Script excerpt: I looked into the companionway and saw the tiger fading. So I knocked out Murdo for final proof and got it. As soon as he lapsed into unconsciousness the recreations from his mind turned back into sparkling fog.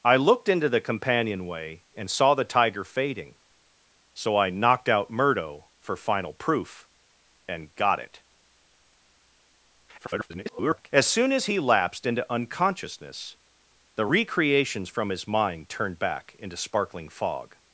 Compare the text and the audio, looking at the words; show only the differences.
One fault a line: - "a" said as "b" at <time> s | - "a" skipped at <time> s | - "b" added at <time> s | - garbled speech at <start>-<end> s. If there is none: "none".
- garbled speech at 10.0-10.9 s